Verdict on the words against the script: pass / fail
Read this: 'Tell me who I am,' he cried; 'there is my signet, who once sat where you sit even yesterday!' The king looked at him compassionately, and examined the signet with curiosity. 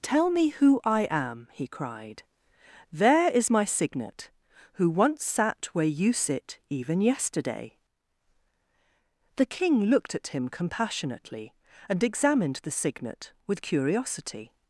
pass